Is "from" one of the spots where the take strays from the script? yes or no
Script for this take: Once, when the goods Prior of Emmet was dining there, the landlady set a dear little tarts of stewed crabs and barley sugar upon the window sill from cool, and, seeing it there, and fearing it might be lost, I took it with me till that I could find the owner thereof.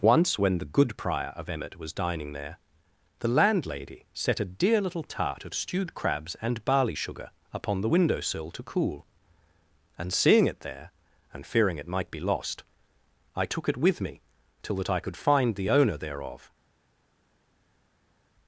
yes